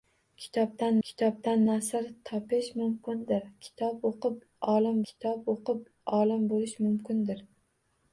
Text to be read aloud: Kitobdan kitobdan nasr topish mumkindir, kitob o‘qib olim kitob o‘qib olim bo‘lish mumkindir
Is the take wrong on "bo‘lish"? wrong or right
right